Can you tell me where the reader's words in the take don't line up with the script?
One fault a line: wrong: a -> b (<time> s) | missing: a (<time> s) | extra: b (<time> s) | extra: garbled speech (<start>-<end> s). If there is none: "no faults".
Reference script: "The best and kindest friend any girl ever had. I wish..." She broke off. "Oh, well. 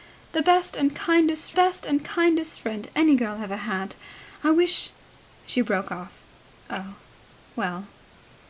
extra: best and kindest (1.5 s)